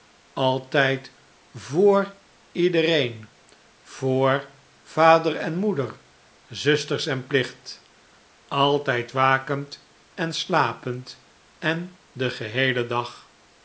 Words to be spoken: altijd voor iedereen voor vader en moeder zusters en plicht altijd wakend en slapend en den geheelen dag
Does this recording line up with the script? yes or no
yes